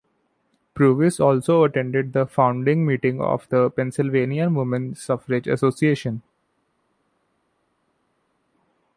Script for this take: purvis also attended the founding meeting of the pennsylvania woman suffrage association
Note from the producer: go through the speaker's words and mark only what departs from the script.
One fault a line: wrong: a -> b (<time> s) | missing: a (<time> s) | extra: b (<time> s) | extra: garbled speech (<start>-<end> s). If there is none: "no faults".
no faults